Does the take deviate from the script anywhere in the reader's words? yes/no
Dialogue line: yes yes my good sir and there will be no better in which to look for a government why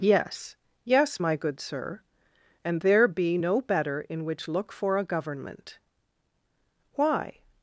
yes